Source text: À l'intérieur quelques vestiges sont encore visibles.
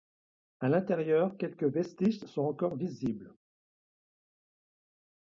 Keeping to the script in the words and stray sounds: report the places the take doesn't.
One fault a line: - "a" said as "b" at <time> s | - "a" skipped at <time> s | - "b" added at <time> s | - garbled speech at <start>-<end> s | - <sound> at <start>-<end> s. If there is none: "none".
none